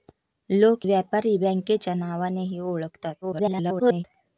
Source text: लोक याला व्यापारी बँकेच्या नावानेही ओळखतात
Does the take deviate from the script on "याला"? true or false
true